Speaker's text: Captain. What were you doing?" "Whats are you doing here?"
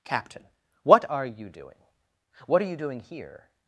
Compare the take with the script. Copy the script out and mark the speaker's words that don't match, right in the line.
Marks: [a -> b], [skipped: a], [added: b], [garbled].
Captain. What [were -> are] you doing?" ["Whats -> What] are you doing here?"